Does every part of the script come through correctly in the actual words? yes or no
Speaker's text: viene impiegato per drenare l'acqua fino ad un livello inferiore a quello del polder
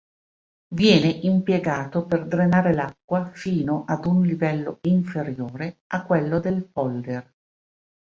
yes